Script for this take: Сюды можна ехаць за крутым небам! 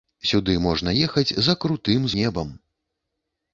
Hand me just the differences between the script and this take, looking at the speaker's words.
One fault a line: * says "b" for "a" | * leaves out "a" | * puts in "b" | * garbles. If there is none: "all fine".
all fine